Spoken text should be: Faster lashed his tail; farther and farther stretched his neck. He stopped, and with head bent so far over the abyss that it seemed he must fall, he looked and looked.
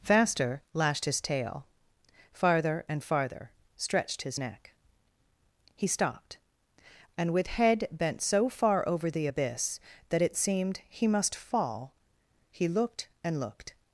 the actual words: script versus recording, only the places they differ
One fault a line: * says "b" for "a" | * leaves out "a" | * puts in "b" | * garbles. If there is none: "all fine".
all fine